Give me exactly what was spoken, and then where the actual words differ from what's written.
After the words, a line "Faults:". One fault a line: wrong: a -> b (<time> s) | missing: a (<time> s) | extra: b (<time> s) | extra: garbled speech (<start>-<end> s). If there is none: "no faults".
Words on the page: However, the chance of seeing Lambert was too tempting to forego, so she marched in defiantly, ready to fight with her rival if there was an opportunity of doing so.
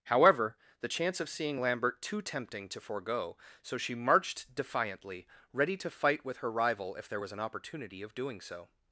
However, the chance of seeing Lambert too tempting to forego, so she marched defiantly, ready to fight with her rival if there was an opportunity of doing so.
Faults:
missing: was (2.0 s)
missing: in (4.5 s)